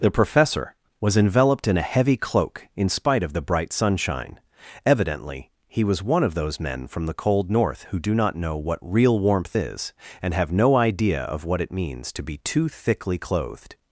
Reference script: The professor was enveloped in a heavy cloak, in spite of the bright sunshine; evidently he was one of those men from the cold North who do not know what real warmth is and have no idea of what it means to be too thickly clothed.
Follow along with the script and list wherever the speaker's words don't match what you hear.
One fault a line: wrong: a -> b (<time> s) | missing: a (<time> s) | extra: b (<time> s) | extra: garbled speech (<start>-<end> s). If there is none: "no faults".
no faults